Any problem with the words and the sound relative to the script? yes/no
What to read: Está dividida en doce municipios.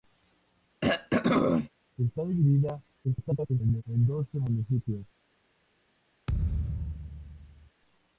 yes